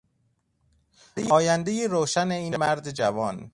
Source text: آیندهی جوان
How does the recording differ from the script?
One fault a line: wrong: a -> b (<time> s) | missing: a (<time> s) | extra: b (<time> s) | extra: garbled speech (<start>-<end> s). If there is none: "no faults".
extra: روشن این مرد (1.9 s)